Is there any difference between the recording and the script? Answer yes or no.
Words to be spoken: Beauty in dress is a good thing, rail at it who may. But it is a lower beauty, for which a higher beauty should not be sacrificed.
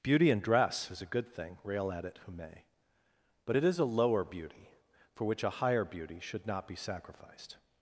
no